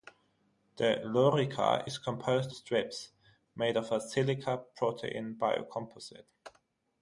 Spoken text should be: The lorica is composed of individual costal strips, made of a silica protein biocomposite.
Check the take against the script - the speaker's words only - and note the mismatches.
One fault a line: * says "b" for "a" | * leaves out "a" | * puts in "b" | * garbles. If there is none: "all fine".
* leaves out "of individual costal"